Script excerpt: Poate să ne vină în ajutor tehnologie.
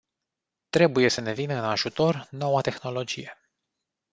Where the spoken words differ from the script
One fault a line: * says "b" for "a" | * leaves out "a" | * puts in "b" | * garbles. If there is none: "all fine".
* says "Trebuie" for "Poate"
* puts in "noua"